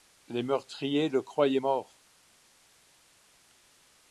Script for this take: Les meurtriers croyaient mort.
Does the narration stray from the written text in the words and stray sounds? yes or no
yes